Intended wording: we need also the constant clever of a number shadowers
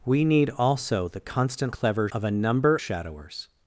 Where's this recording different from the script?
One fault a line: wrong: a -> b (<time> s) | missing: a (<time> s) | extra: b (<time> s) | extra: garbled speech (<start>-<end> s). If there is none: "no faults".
no faults